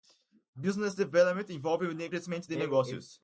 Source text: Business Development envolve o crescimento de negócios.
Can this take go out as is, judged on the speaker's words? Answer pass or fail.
pass